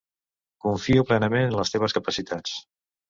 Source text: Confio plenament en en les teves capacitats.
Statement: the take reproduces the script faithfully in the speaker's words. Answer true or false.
false